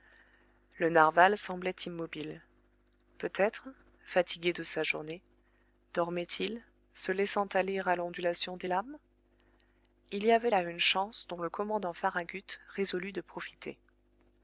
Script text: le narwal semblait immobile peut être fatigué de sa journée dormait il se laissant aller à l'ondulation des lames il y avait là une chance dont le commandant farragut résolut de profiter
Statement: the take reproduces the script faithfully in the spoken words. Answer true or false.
true